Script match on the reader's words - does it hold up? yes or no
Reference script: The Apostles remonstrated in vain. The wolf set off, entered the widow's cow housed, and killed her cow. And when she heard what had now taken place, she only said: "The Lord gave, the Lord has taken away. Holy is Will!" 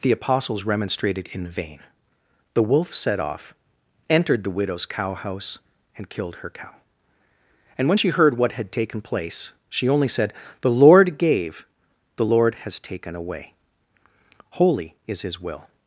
no